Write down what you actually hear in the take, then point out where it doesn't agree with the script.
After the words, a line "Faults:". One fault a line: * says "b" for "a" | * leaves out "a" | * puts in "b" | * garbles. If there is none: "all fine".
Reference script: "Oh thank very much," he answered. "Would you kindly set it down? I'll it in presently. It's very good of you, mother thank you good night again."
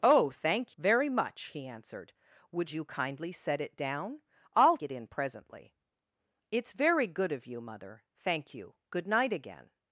"Oh thank very much," he answered. "Would you kindly set it down? I'll it in presently. It's very good of you, mother thank you good night again."
Faults:
all fine